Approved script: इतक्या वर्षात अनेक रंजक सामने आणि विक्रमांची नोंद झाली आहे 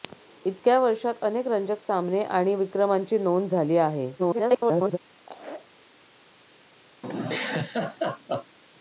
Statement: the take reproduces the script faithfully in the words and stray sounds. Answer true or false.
false